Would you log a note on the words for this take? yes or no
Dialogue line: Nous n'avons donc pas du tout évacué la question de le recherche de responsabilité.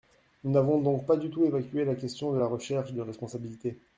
yes